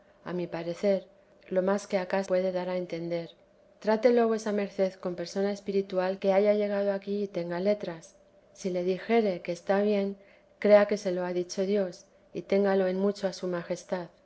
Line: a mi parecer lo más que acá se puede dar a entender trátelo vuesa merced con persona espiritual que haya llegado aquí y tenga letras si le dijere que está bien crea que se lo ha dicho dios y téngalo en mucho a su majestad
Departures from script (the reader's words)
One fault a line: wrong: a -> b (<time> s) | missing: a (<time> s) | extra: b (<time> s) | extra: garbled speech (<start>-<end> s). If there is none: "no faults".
missing: se (2.2 s)